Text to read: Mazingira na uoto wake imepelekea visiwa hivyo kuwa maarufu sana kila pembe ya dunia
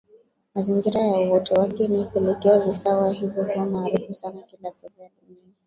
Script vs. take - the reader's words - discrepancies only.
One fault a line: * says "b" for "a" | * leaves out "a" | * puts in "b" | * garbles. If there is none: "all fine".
all fine